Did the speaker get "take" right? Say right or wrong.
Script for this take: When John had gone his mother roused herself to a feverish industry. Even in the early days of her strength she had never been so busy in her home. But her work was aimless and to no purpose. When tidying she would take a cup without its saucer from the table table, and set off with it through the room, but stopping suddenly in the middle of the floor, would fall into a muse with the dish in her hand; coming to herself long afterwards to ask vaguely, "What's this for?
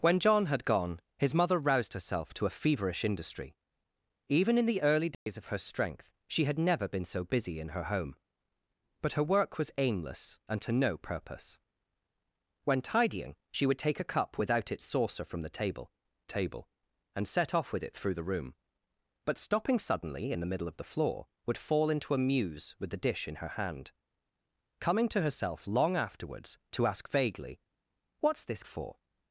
right